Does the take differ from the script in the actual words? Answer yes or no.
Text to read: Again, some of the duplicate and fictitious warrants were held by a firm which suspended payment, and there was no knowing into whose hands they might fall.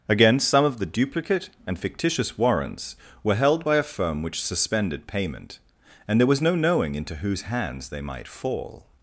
no